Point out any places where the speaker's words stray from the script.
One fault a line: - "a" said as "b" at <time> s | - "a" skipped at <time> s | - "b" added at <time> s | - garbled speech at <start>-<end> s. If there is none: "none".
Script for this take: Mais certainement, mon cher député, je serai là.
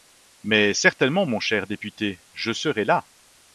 none